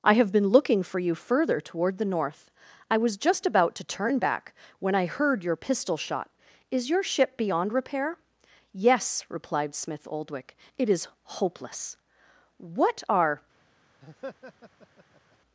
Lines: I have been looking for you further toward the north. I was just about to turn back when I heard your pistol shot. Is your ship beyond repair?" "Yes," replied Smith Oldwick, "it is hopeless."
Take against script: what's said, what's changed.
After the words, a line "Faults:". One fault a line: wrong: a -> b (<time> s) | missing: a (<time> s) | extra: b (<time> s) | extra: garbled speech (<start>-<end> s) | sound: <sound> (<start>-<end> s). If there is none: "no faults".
I have been looking for you further toward the north. I was just about to turn back when I heard your pistol shot. Is your ship beyond repair?" "Yes," replied Smith Oldwick, "it is hopeless." "What are
Faults:
extra: What are (12.6 s)
sound: laugh (14.0-15.4 s)